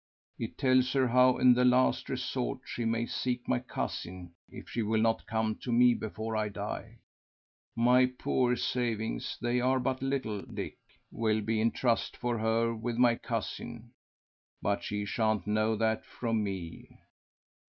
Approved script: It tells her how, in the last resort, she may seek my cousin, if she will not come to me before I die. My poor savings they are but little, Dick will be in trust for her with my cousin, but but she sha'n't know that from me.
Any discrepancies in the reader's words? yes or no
yes